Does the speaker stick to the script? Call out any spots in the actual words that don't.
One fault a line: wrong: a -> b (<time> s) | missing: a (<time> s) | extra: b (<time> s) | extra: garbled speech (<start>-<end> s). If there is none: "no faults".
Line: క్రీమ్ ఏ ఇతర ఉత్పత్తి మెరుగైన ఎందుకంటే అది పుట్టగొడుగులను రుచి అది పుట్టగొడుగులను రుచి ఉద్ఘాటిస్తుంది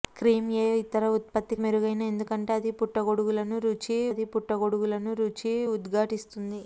no faults